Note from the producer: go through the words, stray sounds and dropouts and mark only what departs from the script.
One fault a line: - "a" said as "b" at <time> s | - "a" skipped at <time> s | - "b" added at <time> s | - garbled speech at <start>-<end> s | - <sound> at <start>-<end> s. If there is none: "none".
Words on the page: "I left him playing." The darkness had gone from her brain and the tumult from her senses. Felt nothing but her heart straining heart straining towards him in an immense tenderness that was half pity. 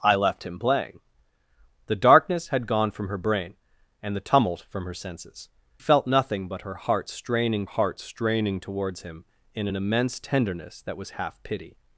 none